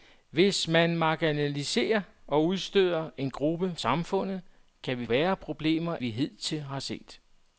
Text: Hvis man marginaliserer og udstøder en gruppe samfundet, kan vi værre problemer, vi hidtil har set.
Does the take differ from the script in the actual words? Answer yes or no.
no